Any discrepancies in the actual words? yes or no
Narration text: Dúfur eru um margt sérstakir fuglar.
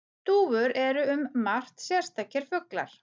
no